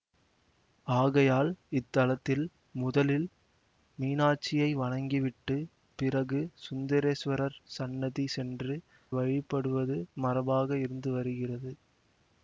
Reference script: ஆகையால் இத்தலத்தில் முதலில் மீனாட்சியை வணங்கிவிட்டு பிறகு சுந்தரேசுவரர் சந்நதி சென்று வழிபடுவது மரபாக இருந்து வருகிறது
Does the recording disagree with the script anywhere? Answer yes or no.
no